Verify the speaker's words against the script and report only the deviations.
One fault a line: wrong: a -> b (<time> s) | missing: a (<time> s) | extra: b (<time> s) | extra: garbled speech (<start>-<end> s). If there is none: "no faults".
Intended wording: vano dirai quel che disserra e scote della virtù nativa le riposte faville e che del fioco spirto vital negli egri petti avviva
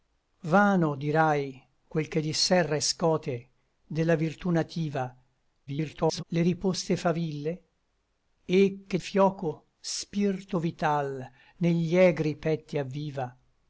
extra: garbled speech (5.7-6.2 s)
missing: del (9.0 s)